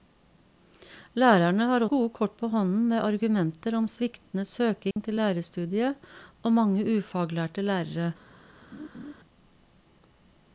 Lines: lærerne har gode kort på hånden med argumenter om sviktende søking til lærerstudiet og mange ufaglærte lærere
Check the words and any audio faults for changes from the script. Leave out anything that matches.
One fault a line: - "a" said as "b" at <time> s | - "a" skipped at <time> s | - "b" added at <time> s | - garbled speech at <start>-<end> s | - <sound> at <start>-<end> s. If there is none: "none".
- dropout at 4.9-5.0 s
- laugh at 8.7-9.1 s